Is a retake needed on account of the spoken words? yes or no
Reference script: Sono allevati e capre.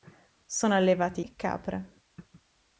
no